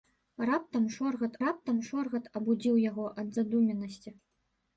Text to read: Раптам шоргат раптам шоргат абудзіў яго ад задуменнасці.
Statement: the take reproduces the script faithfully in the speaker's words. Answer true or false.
true